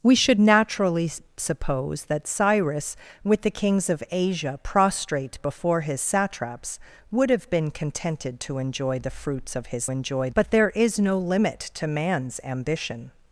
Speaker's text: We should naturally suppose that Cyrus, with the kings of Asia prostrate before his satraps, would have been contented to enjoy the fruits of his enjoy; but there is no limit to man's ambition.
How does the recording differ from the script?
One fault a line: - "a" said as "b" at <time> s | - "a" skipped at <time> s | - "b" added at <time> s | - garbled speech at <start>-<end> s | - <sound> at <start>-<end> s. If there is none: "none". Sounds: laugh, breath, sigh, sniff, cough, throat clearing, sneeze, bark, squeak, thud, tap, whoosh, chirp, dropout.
none